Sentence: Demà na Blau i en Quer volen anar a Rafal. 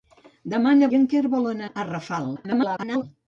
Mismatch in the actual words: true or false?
true